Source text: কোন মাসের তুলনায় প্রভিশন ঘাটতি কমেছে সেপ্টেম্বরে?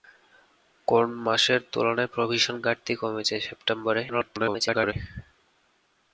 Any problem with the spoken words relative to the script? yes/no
yes